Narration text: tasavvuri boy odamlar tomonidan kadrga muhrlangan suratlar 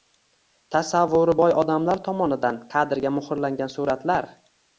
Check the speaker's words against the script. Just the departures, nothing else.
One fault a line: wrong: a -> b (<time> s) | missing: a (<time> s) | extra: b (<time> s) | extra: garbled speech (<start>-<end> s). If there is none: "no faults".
no faults